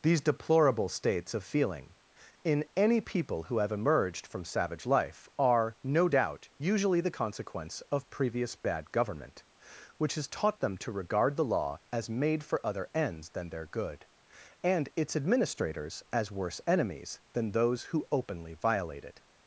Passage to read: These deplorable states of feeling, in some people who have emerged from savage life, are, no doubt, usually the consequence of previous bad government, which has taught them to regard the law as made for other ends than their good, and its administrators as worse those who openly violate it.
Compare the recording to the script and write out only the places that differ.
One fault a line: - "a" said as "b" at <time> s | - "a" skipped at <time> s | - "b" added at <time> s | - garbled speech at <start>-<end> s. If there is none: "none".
- "some" said as "any" at 2.8 s
- "enemies than" added at 16.7 s